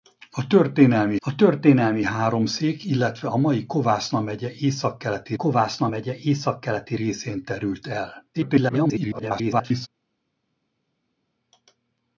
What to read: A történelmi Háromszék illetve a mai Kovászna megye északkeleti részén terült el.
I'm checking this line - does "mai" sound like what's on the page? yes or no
yes